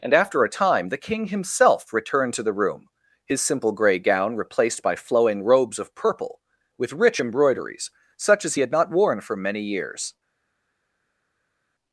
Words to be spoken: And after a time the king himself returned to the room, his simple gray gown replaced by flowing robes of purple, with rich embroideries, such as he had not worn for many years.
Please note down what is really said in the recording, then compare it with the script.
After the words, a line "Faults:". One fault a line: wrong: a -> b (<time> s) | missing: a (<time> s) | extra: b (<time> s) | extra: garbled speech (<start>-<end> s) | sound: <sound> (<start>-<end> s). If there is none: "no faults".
And after a time the king himself returned to the room, his simple gray gown replaced by flowing robes of purple, with rich embroideries, such as he had not worn for many years.
Faults:
no faults